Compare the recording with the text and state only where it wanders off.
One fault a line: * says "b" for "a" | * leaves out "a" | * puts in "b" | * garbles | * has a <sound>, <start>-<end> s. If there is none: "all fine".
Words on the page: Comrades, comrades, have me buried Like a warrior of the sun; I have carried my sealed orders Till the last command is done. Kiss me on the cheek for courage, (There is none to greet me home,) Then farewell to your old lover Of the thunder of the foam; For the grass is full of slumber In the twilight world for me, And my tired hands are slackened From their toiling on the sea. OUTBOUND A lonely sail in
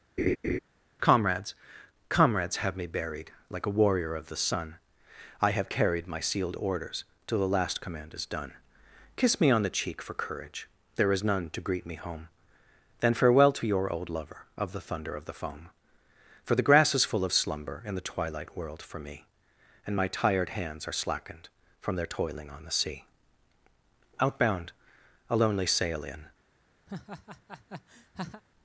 * has a laugh, 0.2-0.6 s
* has a laugh, 26.9-28.4 s